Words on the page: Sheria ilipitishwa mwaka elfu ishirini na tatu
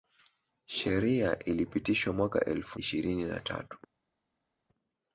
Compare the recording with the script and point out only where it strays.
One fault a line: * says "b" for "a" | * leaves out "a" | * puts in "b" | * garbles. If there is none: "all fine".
all fine